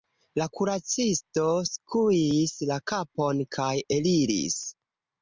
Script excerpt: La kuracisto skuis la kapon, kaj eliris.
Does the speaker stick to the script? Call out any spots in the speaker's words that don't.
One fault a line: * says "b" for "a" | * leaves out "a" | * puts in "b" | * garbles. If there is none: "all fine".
all fine